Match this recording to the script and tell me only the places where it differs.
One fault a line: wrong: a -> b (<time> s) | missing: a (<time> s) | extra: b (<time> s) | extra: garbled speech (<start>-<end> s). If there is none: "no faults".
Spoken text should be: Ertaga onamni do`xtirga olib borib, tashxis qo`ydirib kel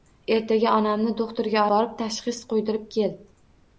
missing: olib (1.6 s)